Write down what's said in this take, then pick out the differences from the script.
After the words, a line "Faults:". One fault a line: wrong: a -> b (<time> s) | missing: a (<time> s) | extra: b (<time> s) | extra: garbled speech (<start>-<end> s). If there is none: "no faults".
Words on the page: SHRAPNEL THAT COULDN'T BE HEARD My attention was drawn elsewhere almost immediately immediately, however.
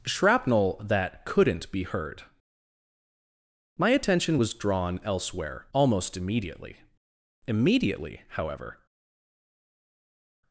SHRAPNEL THAT COULDN'T BE HEARD My attention was drawn elsewhere almost immediately immediately, however.
Faults:
no faults